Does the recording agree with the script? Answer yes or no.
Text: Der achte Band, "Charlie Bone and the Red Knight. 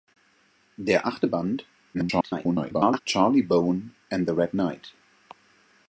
no